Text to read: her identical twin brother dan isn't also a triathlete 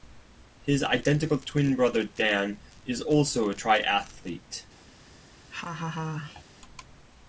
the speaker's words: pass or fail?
fail